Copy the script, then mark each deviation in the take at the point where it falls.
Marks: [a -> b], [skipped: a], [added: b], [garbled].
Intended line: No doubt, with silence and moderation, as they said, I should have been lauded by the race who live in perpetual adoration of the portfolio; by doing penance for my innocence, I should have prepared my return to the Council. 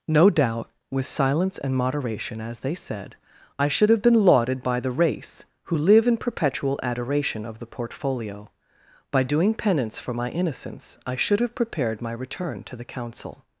No doubt, with silence and moderation, as they said, I should have been lauded by the race who live in perpetual adoration of the portfolio; by doing penance for my innocence, I should have prepared my return to the Council.